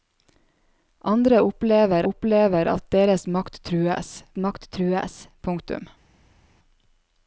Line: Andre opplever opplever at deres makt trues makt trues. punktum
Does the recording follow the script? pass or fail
pass